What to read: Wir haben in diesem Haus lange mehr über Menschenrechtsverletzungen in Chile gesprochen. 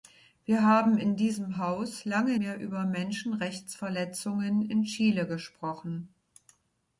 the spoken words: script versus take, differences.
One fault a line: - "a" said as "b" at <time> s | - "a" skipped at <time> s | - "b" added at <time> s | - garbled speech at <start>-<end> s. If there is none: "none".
none